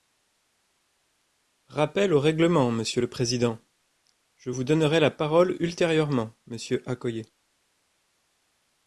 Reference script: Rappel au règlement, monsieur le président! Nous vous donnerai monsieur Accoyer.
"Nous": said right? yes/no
no